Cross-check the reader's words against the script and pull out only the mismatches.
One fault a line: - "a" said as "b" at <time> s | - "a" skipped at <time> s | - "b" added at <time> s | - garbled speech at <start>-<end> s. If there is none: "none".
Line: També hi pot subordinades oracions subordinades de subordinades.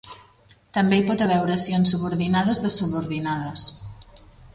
- "subordinades" said as "haver" at 1.2 s